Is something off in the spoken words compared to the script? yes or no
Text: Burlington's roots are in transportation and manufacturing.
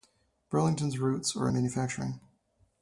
yes